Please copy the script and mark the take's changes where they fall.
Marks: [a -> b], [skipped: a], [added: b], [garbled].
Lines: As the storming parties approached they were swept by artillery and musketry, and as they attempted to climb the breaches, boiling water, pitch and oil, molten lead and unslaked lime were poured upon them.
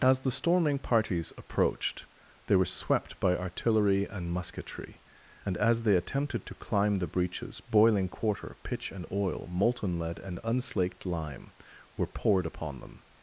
As the storming parties approached they were swept by artillery and musketry, and as they attempted to climb the breaches, boiling [water, -> quarter] pitch and oil, molten lead and unslaked lime were poured upon them.